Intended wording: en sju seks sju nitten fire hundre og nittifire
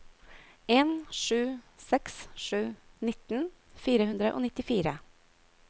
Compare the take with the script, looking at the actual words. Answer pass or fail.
pass